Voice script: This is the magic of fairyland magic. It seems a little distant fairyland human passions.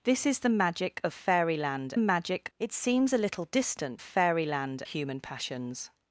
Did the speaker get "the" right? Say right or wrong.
right